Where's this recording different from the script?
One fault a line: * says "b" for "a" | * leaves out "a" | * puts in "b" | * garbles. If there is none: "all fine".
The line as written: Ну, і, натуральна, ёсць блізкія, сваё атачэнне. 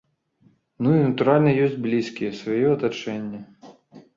all fine